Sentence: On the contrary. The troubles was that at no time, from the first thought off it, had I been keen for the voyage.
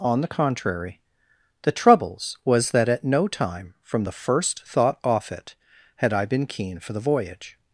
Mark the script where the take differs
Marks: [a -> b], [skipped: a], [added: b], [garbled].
On the contrary. The troubles was that at no time, from the first thought off it, had I been keen for the voyage.